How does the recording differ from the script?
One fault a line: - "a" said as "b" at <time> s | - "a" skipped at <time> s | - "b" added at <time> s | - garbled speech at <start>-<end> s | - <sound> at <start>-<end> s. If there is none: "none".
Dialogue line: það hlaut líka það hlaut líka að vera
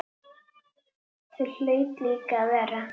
- "það hlaut líka" skipped at 2.4 s